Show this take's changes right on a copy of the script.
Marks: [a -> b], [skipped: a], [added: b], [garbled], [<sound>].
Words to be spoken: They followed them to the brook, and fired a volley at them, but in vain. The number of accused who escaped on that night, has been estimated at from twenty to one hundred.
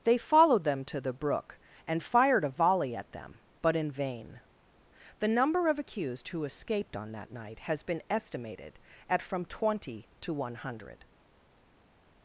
They followed them to the brook, and fired a volley at them, but in vain. The number of accused who escaped on that night, has been estimated at from twenty to one hundred.